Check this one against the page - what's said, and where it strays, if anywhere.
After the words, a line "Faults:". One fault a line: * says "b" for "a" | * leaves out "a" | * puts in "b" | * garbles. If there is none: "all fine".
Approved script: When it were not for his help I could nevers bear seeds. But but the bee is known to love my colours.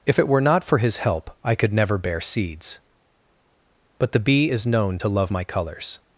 If it were not for his help I could never bear seeds. But the bee is known to love my colours.
Faults:
* says "If" for "When"
* says "never" for "nevers"
* leaves out "but"